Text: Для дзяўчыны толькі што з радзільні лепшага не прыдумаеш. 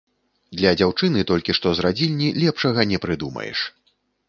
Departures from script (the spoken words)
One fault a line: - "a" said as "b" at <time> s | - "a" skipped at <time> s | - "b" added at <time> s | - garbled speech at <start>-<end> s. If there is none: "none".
none